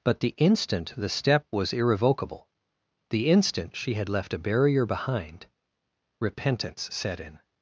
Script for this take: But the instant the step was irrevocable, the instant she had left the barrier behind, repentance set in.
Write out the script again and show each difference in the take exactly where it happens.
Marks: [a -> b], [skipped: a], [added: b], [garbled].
But the instant the step was irrevocable, the instant she had left [the -> a] barrier behind, repentance set in.